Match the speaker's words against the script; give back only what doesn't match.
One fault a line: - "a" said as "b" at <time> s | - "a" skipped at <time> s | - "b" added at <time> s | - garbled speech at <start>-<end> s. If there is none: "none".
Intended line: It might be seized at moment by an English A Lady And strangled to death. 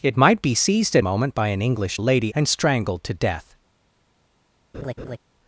none